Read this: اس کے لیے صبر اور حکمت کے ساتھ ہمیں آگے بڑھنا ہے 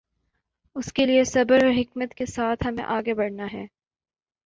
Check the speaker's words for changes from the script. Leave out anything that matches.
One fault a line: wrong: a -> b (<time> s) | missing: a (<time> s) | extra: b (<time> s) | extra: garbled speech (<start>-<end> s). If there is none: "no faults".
no faults